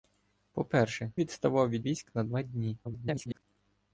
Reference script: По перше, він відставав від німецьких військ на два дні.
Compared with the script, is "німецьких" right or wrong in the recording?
wrong